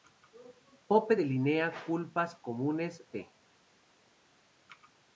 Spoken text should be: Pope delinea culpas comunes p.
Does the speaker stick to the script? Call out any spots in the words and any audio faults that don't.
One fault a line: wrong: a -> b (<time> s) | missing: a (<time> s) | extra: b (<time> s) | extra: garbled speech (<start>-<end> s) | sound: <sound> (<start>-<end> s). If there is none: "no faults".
no faults